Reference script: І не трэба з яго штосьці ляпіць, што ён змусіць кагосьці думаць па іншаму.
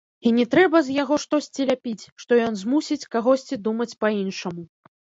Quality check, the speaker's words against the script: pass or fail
pass